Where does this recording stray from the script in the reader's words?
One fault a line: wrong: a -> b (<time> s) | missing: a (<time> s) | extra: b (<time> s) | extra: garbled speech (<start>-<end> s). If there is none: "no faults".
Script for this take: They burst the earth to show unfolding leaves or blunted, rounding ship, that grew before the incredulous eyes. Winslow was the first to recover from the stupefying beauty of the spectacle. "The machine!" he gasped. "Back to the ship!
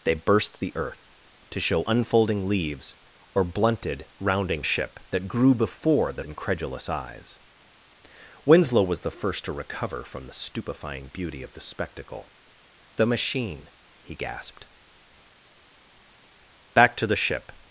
no faults